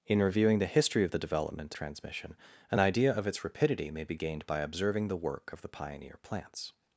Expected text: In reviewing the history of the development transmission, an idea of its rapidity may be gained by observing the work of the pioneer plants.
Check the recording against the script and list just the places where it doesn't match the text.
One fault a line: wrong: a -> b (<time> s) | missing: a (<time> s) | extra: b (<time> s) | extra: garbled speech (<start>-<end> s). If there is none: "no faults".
no faults